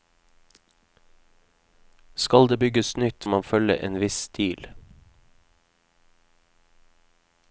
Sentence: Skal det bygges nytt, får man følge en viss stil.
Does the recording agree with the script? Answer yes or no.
no